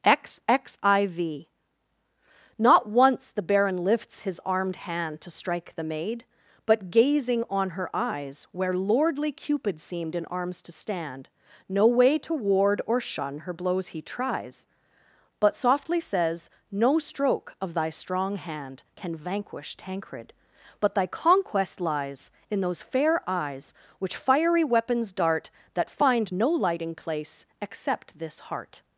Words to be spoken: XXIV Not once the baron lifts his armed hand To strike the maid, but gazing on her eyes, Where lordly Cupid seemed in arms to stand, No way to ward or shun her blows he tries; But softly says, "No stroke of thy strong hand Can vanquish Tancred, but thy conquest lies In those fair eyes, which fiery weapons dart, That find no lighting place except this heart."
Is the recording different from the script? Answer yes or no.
no